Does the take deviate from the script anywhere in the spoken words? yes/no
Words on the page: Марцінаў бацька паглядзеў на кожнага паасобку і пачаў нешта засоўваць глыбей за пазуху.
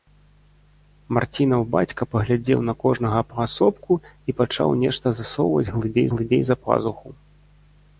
yes